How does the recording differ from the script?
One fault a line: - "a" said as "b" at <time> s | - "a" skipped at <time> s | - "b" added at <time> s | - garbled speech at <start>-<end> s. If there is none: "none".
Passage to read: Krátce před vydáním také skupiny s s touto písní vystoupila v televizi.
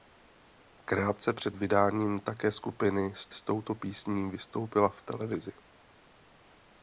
none